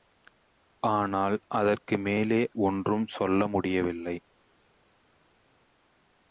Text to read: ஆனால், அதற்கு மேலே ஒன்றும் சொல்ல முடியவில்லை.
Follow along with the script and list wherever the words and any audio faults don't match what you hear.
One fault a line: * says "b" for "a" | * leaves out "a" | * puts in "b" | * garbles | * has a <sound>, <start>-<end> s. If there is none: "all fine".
all fine